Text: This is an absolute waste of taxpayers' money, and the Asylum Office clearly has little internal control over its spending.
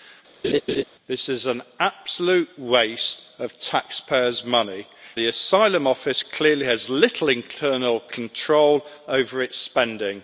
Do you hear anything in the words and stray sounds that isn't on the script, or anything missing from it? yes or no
yes